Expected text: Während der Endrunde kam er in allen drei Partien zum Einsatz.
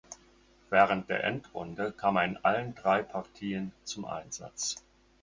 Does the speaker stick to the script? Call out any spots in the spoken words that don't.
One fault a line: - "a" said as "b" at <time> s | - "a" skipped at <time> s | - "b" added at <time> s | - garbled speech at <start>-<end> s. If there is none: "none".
none